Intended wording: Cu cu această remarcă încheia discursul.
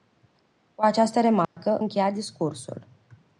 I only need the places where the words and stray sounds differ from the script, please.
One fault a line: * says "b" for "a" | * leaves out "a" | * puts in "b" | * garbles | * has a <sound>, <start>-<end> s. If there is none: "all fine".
* has a dropout, 1.4-1.6 s